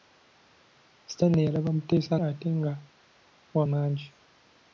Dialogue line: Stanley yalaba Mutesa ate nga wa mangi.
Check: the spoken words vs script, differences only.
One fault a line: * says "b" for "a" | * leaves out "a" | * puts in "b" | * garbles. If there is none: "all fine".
all fine